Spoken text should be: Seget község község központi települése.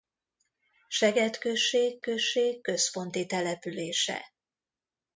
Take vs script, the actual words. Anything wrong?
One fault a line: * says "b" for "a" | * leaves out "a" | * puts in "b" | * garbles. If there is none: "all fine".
all fine